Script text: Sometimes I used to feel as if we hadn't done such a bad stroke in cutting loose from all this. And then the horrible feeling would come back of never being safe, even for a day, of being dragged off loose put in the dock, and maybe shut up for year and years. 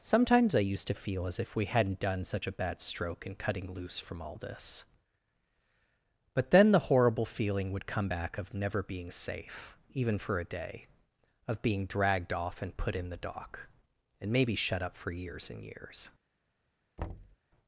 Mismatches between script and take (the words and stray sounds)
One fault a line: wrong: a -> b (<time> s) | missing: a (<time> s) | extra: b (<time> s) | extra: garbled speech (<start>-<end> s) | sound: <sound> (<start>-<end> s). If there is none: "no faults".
wrong: And -> But (6.3 s)
wrong: loose -> and (12.6 s)
wrong: year -> years (15.1 s)
sound: thud (17.0-17.4 s)